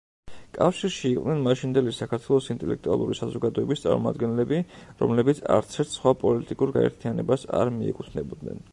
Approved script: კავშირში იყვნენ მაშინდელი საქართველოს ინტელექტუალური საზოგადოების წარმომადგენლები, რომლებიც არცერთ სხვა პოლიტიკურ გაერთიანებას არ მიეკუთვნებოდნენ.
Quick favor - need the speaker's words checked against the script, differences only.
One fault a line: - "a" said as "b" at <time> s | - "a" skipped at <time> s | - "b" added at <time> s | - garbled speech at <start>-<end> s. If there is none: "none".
none